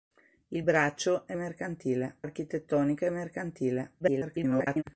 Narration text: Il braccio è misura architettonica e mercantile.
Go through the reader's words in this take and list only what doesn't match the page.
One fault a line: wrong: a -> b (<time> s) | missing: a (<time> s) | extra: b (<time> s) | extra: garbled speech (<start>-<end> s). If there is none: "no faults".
wrong: misura -> mercantile (1.3 s)
extra: garbled speech (4.0-4.8 s)